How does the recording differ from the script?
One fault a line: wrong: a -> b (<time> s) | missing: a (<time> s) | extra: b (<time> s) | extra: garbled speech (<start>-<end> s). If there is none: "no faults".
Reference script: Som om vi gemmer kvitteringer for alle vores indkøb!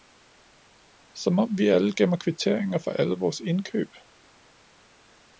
extra: alle (1.7 s)